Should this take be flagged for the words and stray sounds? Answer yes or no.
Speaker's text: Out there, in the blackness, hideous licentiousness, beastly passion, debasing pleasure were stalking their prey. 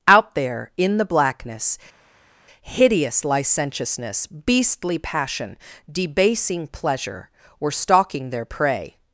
no